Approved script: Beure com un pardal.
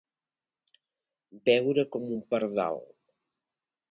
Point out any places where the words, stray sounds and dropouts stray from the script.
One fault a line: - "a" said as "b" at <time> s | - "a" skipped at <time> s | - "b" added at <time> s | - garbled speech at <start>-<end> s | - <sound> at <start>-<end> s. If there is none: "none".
none